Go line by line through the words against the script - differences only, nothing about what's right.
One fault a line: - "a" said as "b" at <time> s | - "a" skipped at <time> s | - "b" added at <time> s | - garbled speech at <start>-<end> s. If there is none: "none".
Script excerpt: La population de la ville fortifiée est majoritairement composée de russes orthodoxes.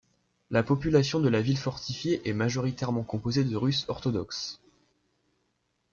none